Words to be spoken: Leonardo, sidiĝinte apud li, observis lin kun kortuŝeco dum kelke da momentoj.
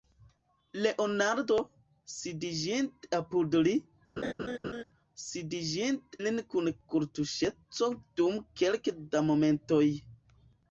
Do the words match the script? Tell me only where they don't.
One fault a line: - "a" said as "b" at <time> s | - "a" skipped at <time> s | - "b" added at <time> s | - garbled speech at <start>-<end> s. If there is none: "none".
- "observis" said as "sidiĝinte" at 5.2 s